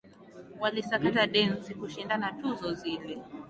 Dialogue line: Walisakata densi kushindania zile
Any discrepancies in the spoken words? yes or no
yes